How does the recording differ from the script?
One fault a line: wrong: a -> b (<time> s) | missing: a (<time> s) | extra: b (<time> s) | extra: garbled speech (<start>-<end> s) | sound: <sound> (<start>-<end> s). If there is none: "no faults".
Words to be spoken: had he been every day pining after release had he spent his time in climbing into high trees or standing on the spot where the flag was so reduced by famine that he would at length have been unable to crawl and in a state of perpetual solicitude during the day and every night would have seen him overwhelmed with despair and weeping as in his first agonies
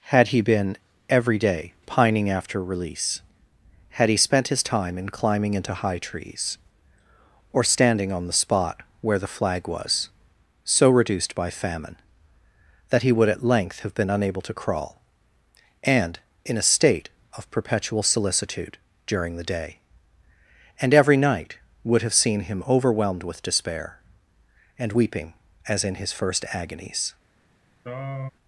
sound: throat clearing (27.8-28.3 s)